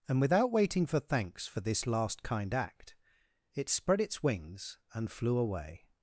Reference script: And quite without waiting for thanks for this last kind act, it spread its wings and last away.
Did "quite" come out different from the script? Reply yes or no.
yes